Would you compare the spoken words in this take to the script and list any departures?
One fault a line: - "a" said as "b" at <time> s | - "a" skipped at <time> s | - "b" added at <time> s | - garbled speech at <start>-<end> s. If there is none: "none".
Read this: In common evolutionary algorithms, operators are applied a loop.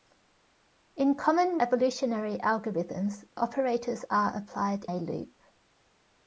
none